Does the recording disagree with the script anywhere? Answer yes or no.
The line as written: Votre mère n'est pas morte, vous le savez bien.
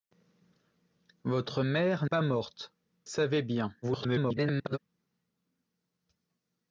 yes